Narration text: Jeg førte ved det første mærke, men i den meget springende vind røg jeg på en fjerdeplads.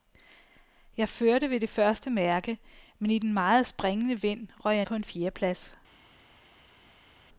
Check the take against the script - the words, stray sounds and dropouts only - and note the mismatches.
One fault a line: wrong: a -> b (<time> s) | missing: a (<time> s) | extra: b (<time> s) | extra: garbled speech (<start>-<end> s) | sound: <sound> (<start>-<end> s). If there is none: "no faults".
no faults